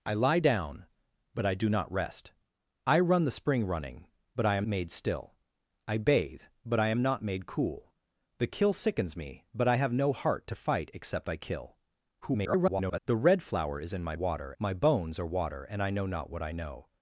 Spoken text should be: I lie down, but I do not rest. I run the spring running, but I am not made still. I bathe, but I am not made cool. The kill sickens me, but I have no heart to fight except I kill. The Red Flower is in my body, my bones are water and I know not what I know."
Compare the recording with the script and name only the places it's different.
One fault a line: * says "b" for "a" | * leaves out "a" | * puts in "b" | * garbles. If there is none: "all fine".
* leaves out "not"
* garbles
* says "water" for "body"